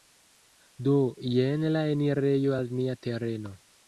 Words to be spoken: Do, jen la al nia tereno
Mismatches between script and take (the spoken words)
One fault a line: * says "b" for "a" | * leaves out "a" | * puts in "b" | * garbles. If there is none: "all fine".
* puts in "enirejo"